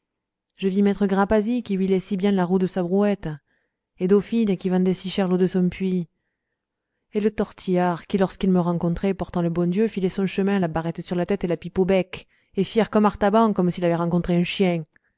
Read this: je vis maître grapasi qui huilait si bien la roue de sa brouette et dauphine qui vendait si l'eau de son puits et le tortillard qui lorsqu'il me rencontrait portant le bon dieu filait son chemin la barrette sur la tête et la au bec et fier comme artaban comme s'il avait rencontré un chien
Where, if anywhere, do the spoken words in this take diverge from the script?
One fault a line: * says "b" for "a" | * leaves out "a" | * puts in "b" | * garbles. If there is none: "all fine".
* puts in "cher"
* puts in "pipe"